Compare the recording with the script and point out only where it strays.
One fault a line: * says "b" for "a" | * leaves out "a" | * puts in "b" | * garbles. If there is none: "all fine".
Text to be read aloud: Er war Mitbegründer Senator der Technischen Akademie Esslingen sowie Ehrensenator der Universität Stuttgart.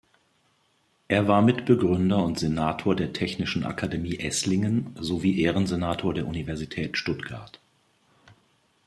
* puts in "und"